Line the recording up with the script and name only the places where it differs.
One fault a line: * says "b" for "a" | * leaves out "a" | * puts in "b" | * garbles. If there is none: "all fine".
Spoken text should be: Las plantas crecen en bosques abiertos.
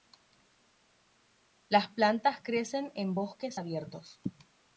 all fine